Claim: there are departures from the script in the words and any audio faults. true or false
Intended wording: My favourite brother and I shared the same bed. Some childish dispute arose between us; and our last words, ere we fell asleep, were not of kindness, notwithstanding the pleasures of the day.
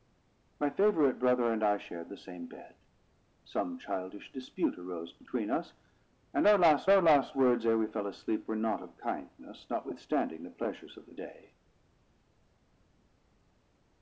true